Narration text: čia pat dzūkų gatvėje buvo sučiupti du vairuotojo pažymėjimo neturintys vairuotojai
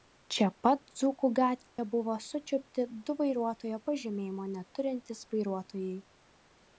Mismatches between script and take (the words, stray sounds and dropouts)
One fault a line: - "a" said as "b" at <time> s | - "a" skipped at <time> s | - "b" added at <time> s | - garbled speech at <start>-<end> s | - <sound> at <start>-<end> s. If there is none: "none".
- dropout at 1.7-1.8 s